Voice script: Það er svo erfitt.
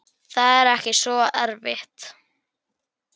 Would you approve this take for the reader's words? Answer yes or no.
no